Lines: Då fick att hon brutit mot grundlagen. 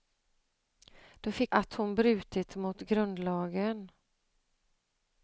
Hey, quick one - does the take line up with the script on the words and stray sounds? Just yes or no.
yes